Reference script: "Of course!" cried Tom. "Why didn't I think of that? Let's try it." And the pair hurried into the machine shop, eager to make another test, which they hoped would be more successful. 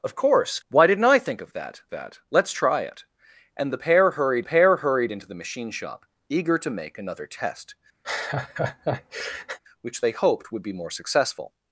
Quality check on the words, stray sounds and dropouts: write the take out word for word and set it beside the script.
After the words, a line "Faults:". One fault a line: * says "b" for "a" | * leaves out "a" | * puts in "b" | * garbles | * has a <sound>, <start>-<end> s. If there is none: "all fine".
"Of course. "Why didn't I think of that that? Let's try it." And the pair hurried pair hurried into the machine shop, eager to make another test, which they hoped would be more successful.
Faults:
* leaves out "cried Tom"
* puts in "that"
* puts in "pair hurried"
* has a laugh, 8.0-9.6 s